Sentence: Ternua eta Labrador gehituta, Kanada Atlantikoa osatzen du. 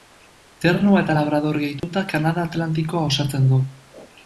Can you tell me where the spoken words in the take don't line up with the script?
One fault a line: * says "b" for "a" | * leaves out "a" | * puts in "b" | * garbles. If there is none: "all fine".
all fine